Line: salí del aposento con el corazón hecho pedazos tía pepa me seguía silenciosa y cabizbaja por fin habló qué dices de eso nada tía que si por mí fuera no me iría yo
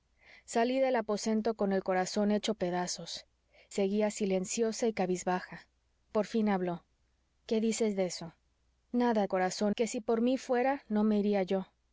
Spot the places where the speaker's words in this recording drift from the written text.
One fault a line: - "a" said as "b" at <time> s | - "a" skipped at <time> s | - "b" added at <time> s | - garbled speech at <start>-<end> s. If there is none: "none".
- "tía pepa me" skipped at 3.2 s
- "tía" said as "corazón" at 9.3 s